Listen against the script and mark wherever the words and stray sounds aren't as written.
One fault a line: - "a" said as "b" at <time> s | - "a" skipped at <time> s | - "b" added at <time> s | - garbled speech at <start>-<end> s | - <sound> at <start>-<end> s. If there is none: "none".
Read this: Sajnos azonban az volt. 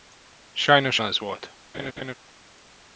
- "azonban" skipped at 1.0 s
- laugh at 1.7-2.1 s